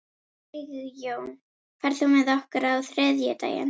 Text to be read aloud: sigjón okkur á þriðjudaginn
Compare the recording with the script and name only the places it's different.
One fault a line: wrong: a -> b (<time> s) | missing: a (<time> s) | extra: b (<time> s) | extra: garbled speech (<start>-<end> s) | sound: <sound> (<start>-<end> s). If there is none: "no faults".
extra: ferð þú með (1.9 s)